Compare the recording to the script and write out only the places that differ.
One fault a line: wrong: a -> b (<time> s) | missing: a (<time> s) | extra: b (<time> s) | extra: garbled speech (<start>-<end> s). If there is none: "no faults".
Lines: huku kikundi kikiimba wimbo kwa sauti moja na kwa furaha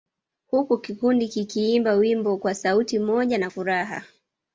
missing: kwa (3.5 s)